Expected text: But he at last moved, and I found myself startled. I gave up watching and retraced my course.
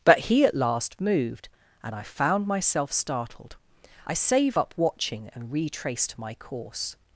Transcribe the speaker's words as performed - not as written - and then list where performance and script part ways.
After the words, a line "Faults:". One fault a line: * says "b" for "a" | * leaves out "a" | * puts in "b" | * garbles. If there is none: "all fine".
But he at last moved, and I found myself startled. I save up watching and retraced my course.
Faults:
* says "save" for "gave"